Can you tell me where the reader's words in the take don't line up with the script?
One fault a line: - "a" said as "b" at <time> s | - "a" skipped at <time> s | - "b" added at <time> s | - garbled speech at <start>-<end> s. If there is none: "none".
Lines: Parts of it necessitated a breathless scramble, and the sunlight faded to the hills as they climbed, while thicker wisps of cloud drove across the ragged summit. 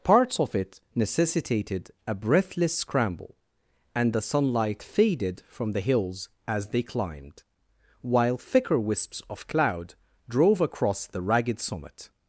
- "to" said as "from" at 5.5 s